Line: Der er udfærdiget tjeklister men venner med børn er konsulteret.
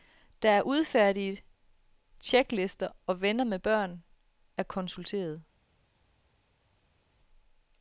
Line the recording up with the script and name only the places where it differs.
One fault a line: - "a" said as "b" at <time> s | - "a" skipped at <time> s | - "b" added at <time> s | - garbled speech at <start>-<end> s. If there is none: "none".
- "men" said as "og" at 3.1 s